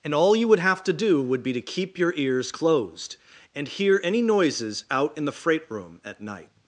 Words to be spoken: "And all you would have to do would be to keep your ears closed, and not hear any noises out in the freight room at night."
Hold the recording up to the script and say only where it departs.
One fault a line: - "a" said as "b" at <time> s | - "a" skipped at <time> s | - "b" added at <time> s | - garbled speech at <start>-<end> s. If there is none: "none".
- "not" skipped at 3.7 s